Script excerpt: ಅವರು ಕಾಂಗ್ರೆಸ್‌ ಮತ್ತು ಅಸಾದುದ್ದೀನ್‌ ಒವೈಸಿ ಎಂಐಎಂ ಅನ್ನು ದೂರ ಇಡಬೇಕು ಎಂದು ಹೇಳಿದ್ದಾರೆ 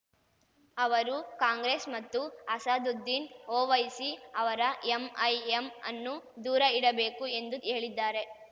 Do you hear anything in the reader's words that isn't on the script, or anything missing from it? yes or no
yes